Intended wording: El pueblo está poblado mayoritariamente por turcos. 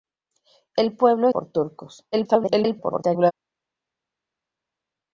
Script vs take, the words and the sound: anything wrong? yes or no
yes